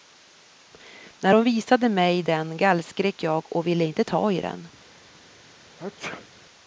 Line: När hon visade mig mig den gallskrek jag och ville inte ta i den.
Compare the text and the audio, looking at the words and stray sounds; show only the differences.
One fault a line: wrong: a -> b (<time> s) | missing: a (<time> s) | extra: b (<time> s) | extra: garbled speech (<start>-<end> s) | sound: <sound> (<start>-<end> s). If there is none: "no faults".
missing: mig (2.2 s)
sound: sneeze (5.8-6.3 s)